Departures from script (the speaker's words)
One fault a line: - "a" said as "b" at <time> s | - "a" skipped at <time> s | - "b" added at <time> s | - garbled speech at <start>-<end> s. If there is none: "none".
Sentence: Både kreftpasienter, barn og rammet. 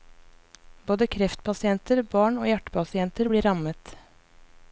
- "hjertepasienter blir" added at 2.5 s